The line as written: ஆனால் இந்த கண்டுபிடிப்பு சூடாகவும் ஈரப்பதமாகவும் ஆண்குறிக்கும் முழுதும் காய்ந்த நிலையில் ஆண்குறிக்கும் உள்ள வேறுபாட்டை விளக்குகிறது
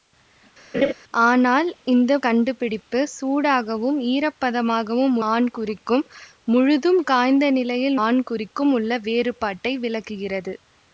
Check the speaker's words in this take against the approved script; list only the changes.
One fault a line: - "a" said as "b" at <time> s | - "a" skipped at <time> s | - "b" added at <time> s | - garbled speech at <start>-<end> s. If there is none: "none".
none